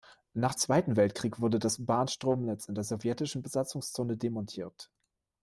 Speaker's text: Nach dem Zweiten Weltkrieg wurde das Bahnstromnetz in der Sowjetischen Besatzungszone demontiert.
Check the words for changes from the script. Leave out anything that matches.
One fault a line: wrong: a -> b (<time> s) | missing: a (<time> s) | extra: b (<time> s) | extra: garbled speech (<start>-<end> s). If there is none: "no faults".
missing: dem (0.6 s)